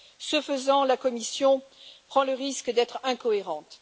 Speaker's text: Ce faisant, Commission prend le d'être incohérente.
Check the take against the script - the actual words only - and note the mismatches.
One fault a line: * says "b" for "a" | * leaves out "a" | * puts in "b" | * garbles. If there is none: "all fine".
* puts in "la"
* puts in "risque"